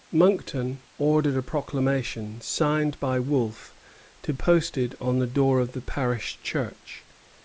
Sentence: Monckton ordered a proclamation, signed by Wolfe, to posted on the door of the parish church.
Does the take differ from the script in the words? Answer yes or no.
no